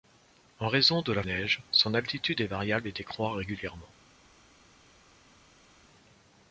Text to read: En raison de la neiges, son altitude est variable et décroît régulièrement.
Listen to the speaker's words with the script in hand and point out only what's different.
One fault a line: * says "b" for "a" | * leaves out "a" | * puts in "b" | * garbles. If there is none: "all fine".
all fine